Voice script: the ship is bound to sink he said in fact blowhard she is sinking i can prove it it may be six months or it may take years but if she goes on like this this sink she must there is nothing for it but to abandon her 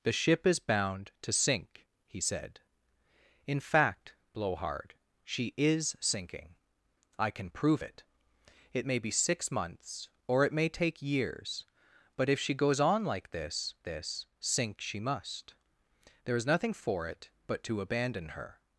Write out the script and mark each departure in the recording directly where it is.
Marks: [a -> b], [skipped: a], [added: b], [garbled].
the ship is bound to sink he said in fact blowhard she is sinking i can prove it it may be six months or it may take years but if she goes on like this this sink she must there is nothing for it but to abandon her